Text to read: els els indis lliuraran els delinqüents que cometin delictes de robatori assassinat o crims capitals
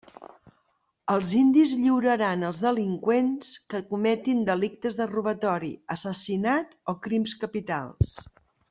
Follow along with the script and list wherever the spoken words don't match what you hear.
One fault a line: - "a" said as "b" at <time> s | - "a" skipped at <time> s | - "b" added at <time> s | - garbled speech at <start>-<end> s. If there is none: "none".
- "els" skipped at 1.3 s